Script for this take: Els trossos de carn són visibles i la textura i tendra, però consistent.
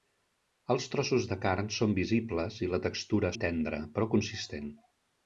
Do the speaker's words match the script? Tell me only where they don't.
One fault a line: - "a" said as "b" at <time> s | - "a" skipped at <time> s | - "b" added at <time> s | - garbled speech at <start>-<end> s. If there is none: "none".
none